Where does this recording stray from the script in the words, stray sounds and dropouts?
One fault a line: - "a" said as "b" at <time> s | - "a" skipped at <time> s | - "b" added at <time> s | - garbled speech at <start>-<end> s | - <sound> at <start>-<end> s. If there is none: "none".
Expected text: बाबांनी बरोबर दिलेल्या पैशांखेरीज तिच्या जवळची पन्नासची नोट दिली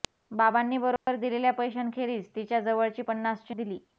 - dropout at 1.0-1.1 s
- "नोट" skipped at 3.5 s